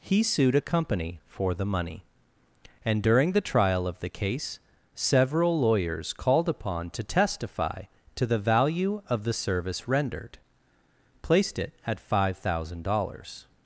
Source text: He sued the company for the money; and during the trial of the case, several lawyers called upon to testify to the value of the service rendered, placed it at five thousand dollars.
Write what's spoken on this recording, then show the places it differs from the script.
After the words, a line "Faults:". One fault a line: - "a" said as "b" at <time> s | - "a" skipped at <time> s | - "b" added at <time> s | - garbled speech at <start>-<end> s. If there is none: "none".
He sued a company for the money; and during the trial of the case, several lawyers called upon to testify to the value of the service rendered, placed it at five thousand dollars.
Faults:
- "the" said as "a" at 0.6 s